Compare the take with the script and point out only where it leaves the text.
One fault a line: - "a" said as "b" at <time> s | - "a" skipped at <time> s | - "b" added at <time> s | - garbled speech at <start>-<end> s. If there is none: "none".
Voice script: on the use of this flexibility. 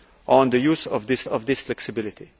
- "of this" added at 1.3 s